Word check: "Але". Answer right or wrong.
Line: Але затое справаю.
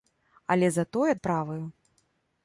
right